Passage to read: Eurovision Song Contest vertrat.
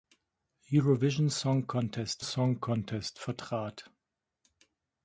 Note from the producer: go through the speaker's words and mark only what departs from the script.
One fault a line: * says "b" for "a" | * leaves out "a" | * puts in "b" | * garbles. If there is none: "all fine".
* puts in "Song Contest"